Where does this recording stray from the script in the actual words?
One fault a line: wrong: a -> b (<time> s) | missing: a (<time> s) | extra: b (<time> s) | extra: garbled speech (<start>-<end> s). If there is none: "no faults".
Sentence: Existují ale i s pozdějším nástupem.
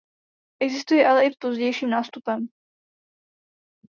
no faults